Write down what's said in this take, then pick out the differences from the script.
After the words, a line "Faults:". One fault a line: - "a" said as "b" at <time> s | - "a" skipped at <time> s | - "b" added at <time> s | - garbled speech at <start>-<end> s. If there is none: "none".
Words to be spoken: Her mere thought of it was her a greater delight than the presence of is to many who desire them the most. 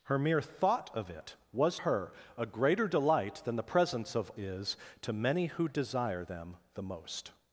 Her mere thought of it was her a greater delight than the presence of is to many who desire them the most.
Faults:
none